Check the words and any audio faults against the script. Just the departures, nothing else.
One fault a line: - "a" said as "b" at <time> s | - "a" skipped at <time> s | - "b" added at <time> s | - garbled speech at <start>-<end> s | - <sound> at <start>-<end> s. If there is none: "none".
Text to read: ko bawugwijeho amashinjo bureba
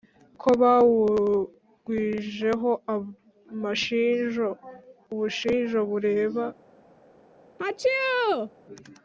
- "ubushinjo" added at 5.1 s
- sneeze at 7.6-8.5 s